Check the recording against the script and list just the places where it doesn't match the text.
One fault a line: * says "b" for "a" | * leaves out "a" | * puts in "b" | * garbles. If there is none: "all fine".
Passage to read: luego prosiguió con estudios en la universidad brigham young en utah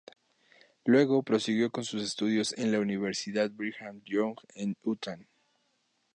* puts in "sus"